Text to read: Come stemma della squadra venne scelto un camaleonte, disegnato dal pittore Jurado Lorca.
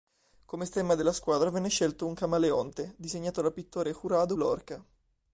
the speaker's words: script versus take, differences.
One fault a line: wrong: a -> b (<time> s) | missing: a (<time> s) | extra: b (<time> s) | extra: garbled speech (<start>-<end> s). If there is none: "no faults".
no faults